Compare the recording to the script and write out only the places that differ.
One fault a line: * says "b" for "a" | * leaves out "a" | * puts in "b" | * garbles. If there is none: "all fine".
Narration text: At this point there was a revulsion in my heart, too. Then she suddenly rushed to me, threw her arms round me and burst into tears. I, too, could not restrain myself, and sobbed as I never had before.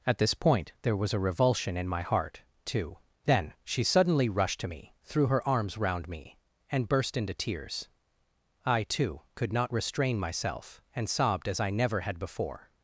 all fine